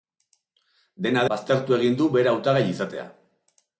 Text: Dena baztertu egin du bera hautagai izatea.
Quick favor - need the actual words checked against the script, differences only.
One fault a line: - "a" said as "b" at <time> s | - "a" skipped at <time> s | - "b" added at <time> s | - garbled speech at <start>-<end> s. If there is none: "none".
none